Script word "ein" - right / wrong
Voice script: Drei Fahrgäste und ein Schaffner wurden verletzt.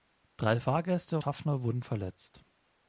wrong